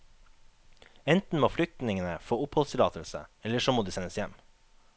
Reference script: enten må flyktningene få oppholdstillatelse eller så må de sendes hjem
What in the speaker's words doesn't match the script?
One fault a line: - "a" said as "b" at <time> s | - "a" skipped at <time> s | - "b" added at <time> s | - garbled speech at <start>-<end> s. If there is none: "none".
none